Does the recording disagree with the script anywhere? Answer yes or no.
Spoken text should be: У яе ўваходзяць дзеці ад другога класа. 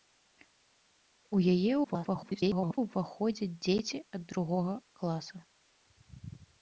yes